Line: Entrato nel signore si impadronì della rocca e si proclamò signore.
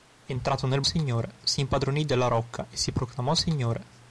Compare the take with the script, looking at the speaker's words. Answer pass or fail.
pass